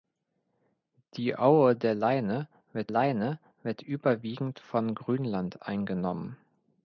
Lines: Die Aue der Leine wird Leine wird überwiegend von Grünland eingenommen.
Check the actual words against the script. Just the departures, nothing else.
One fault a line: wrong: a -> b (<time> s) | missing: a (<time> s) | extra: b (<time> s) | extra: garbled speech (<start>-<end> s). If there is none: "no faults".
no faults